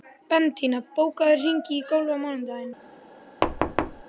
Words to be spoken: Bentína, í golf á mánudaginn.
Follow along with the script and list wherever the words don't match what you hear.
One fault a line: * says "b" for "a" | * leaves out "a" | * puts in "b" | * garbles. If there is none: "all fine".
* puts in "bókaðu hring"